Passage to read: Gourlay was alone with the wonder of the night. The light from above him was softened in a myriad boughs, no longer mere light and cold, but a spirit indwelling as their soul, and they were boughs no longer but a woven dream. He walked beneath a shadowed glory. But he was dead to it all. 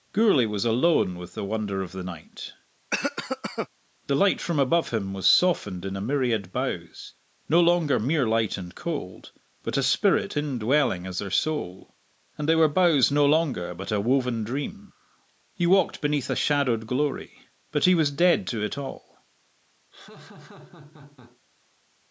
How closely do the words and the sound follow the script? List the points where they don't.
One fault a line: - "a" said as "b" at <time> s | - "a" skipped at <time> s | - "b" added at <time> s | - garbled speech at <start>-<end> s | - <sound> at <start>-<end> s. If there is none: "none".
- cough at 2.9-3.7 s
- laugh at 19.9-21.4 s